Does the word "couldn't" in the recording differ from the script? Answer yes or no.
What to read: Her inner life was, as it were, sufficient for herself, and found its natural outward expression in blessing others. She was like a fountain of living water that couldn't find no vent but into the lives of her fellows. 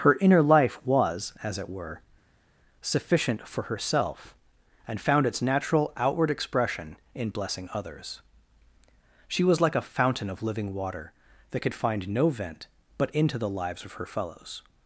yes